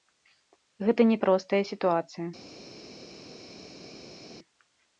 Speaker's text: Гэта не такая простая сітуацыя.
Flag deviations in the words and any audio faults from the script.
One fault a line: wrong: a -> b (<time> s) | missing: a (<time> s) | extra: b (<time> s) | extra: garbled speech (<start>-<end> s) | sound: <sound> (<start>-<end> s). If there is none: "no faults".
missing: такая (1.2 s)